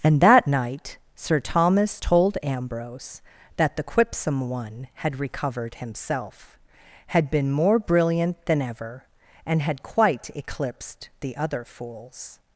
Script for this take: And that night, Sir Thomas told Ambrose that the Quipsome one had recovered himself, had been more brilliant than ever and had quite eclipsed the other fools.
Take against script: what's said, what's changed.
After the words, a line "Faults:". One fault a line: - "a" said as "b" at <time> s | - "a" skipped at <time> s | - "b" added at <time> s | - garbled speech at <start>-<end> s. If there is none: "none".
And that night, Sir Thomas told Ambrose that the Quipsome one had recovered himself, had been more brilliant than ever and had quite eclipsed the other fools.
Faults:
none